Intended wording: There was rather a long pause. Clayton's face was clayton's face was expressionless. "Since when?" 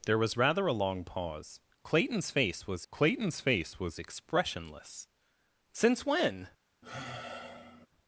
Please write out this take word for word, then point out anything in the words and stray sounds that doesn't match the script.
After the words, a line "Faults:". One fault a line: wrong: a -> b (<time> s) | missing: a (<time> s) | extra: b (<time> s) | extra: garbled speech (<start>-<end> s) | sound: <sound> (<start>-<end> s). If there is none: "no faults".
There was rather a long pause. Clayton's face was clayton's face was expressionless. "Since when?"
Faults:
sound: sigh (6.8-7.9 s)